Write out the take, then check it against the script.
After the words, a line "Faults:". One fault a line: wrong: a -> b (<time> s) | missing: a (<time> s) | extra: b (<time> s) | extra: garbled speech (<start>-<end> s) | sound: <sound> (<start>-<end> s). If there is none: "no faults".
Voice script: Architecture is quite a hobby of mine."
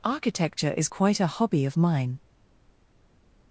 Architecture is quite a hobby of mine."
Faults:
no faults